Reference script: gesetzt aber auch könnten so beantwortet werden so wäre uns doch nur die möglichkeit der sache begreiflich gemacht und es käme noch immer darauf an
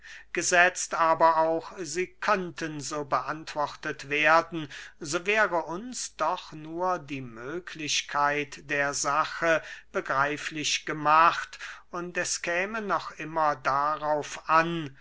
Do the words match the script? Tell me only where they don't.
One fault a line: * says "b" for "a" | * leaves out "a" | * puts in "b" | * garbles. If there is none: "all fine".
* puts in "sie"